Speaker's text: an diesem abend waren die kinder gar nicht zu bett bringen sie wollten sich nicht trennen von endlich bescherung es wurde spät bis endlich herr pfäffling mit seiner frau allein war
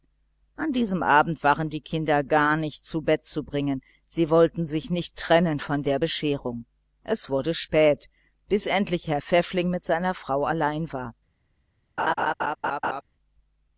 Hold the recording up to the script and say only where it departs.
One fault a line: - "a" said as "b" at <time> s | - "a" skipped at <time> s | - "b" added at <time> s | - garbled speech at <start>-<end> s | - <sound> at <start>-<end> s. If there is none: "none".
- "zu" added at 3.2 s
- "endlich" said as "der" at 5.8 s
- laugh at 12.0-13.0 s